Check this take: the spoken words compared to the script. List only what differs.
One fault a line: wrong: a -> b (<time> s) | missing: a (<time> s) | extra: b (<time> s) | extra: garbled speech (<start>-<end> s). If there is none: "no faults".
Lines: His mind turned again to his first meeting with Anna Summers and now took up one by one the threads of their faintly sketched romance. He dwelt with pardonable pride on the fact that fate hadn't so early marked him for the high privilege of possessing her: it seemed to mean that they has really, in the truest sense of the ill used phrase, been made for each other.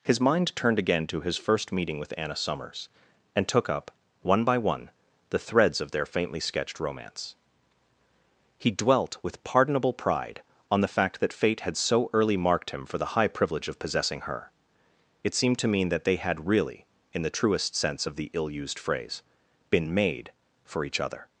missing: now (3.5 s)
wrong: hadn't -> had (11.6 s)
wrong: has -> had (16.1 s)